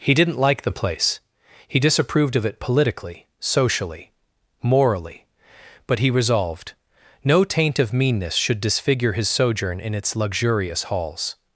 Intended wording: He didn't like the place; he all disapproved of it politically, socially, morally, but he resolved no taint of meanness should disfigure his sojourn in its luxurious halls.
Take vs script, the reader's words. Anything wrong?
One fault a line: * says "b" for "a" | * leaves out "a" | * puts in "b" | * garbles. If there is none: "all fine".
* leaves out "all"